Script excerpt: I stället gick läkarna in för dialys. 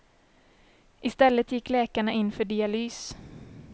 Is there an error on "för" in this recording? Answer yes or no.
no